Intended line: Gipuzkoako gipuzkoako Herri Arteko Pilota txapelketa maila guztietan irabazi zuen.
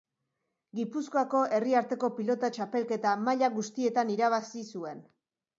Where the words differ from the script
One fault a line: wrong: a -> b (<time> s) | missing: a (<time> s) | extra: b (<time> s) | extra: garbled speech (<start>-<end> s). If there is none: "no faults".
missing: gipuzkoako (1.4 s)